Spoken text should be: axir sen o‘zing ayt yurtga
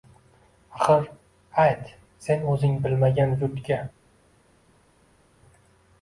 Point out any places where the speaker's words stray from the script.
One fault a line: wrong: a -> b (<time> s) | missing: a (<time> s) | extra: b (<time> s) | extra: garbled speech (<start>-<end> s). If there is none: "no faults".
extra: ayt (1.6 s)
wrong: ayt -> bilmagan (2.9 s)